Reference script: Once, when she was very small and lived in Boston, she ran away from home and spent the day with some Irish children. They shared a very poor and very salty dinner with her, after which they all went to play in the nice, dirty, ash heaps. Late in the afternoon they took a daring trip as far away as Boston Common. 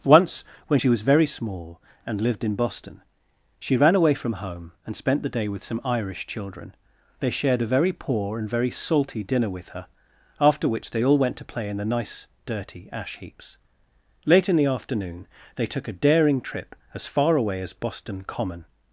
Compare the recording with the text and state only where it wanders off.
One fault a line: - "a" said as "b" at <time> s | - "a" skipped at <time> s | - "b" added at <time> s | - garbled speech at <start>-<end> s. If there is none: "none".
none